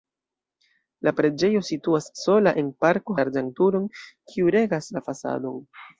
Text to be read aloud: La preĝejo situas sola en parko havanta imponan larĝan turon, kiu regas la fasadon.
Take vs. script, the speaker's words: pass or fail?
fail